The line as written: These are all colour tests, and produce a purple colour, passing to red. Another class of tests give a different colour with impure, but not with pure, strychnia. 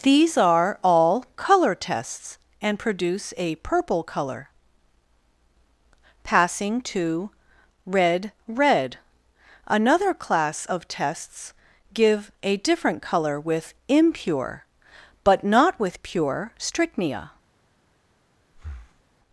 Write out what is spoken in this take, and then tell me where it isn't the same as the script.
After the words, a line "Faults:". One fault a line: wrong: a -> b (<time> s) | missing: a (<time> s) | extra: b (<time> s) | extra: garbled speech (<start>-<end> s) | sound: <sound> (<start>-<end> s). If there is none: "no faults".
These are all colour tests, and produce a purple colour, passing to red red. Another class of tests give a different colour with impure, but not with pure, strychnia.
Faults:
extra: red (8.5 s)
sound: breath (18.5-19.0 s)